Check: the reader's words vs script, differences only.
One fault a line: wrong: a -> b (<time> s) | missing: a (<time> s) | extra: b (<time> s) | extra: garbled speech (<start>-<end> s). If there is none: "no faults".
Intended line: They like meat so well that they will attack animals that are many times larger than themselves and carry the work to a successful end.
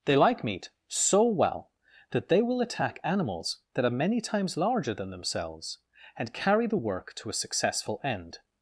no faults